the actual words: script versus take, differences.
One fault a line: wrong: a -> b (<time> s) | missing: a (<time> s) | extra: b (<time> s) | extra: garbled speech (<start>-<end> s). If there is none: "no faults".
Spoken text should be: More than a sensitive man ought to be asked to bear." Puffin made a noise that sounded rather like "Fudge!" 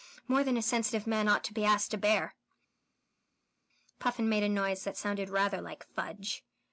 no faults